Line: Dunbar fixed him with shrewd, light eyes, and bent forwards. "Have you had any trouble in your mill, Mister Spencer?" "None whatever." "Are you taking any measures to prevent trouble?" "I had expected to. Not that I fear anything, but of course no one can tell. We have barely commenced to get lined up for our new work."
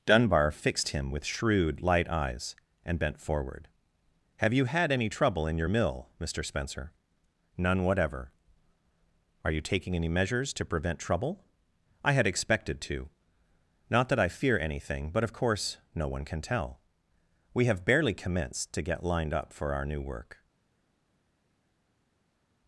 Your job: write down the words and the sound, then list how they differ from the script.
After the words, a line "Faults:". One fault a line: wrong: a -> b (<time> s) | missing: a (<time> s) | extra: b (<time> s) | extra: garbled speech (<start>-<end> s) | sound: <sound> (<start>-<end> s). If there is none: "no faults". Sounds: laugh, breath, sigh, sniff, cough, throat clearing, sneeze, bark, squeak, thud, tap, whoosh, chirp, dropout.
Dunbar fixed him with shrewd, light eyes, and bent forward. "Have you had any trouble in your mill, Mister Spencer?" "None whatever." "Are you taking any measures to prevent trouble?" "I had expected to. Not that I fear anything, but of course no one can tell. We have barely commenced to get lined up for our new work."
Faults:
wrong: forwards -> forward (3.2 s)